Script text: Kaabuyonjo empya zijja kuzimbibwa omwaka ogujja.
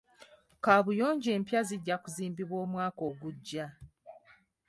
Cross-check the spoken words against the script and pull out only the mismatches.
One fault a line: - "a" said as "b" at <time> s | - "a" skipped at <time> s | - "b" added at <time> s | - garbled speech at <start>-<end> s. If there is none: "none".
none